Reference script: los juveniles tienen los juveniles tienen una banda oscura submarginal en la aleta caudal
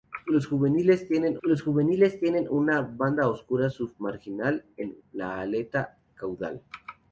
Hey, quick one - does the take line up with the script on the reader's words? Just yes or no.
yes